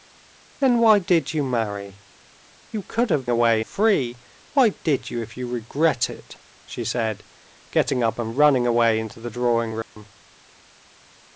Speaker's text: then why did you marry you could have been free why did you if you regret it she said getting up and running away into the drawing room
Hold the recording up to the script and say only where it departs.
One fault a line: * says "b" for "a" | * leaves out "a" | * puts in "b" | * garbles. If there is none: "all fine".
* says "away" for "been"